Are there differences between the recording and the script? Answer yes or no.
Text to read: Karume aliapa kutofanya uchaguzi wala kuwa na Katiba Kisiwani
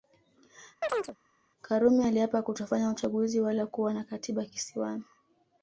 no